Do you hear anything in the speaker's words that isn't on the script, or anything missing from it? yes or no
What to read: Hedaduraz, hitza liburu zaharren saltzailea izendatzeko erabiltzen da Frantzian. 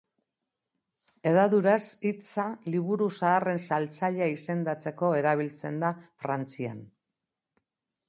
no